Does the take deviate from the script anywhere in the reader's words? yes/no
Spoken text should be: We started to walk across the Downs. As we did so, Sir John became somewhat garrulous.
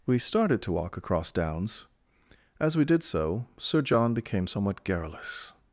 yes